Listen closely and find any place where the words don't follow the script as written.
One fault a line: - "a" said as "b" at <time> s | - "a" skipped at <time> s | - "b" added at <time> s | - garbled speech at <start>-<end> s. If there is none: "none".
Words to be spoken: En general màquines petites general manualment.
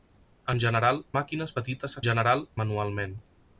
none